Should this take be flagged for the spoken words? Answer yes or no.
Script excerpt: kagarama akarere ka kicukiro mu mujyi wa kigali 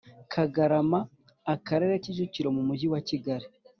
yes